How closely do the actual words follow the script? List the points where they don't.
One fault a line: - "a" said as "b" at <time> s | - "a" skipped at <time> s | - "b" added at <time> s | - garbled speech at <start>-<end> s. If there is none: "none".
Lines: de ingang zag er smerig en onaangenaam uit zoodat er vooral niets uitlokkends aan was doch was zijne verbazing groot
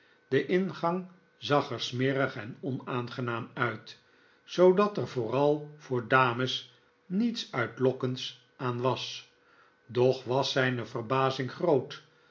- "voor dames" added at 5.8 s